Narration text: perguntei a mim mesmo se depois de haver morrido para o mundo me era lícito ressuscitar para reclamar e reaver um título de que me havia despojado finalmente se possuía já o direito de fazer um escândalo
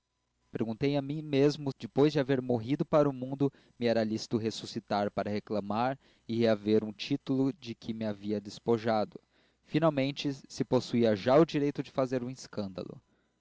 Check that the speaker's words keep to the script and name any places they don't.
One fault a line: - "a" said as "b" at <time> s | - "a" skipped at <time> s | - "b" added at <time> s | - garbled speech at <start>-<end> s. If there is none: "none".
- "se" skipped at 1.7 s